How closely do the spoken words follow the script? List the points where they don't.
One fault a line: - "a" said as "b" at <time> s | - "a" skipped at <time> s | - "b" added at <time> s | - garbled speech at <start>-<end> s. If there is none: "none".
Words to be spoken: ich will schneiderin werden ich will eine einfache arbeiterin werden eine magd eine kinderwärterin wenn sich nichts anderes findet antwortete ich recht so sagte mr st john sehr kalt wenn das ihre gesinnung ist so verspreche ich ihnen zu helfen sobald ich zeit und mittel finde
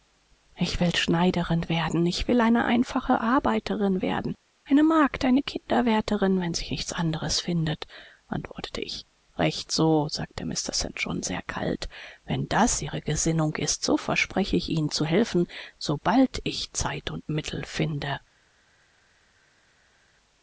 none